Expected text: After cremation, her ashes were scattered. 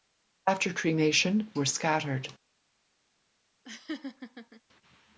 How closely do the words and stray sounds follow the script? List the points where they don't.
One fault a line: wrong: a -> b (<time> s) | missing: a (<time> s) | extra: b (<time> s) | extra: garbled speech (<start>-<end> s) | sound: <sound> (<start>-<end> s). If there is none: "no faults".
missing: her ashes (1.5 s)
sound: laugh (3.6-4.6 s)